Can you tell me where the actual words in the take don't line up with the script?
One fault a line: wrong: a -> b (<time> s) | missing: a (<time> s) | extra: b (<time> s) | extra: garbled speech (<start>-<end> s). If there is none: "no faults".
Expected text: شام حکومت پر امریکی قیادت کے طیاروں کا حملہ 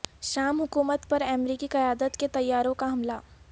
no faults